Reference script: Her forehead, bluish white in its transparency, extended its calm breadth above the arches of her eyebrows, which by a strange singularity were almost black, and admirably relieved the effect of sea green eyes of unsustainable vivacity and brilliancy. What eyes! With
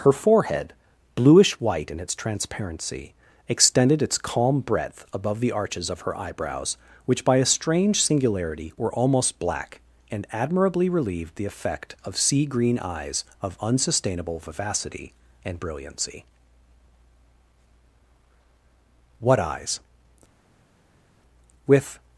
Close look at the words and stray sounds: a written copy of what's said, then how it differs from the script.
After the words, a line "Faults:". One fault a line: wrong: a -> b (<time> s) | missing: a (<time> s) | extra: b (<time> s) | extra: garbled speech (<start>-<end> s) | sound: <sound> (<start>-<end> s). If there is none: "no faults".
Her forehead, bluish white in its transparency, extended its calm breadth above the arches of her eyebrows, which by a strange singularity were almost black, and admirably relieved the effect of sea green eyes of unsustainable vivacity and brilliancy. What eyes! With
Faults:
no faults